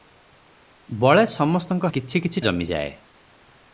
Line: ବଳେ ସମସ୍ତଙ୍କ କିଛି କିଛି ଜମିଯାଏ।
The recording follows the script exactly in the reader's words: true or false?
true